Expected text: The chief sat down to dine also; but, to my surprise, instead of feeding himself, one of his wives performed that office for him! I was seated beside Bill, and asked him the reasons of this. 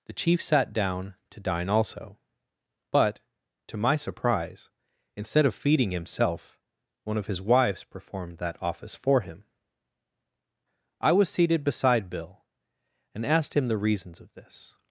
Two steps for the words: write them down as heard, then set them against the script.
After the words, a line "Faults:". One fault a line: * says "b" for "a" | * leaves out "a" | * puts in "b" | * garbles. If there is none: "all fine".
The chief sat down to dine also; but, to my surprise, instead of feeding himself, one of his wives performed that office for him! I was seated beside Bill, and asked him the reasons of this.
Faults:
all fine